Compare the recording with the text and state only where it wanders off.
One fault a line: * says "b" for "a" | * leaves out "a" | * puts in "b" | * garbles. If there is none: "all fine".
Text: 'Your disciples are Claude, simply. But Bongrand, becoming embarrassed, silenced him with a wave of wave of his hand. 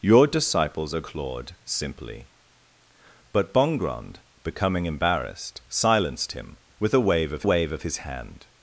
all fine